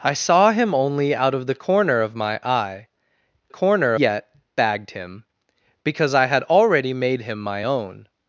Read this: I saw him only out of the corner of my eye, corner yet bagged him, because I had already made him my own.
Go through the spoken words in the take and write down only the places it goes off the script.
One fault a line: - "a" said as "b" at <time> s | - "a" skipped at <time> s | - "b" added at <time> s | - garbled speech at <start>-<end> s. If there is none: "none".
none